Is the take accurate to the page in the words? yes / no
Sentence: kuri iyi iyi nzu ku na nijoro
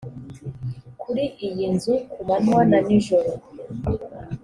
no